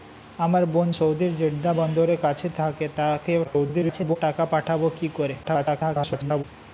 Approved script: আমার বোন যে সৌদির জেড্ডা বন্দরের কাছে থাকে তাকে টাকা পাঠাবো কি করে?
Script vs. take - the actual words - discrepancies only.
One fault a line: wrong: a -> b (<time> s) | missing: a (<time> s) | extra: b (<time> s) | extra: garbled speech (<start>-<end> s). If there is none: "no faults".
missing: যে (0.9 s)
extra: garbled speech (3.4-4.2 s)
extra: garbled speech (5.4-6.4 s)